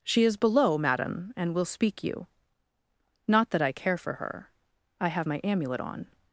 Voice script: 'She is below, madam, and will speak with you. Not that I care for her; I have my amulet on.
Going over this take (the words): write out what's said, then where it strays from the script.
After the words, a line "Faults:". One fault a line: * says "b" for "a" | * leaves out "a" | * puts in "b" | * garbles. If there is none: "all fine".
'She is below, madam, and will speak you. Not that I care for her; I have my amulet on.
Faults:
* leaves out "with"